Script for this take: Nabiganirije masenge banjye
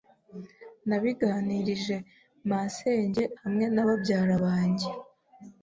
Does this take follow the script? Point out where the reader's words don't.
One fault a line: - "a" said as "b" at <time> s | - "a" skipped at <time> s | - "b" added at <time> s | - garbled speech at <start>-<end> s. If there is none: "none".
- "hamwe na babyara" added at 3.4 s